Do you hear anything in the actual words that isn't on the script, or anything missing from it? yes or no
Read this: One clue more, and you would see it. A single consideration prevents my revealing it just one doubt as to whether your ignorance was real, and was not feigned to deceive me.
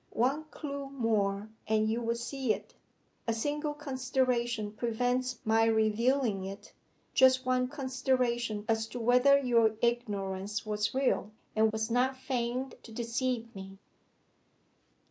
yes